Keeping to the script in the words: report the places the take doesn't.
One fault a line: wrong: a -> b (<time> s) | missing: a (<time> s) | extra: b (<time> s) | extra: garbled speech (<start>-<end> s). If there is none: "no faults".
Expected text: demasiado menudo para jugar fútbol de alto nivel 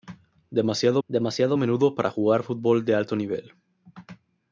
extra: demasiado (1.1 s)